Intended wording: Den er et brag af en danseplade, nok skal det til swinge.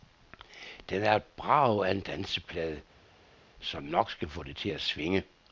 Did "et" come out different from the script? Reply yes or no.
no